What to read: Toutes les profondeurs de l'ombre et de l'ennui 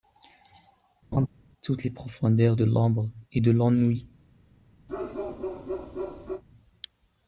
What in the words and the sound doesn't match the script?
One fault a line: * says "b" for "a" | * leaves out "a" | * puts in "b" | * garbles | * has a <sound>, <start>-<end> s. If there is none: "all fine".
* has a laugh, 1.1-1.3 s
* has a bark, 4.9-6.4 s